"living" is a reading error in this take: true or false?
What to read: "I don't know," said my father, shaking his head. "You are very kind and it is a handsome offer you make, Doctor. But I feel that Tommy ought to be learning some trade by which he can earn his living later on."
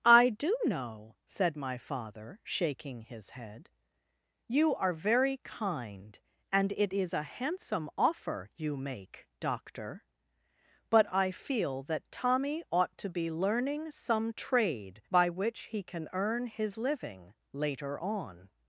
false